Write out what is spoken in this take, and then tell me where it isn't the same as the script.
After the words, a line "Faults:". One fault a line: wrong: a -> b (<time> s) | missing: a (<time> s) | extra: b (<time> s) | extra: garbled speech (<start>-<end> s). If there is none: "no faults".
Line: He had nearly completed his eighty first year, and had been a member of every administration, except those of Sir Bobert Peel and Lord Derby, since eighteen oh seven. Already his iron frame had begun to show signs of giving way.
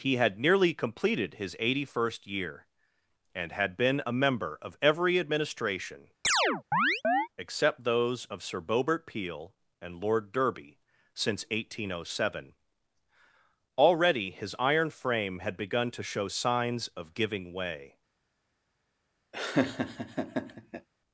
He had nearly completed his eighty first year, and had been a member of every administration, except those of Sir Bobert Peel and Lord Derby, since eighteen oh seven. Already his iron frame had begun to show signs of giving way.
Faults:
no faults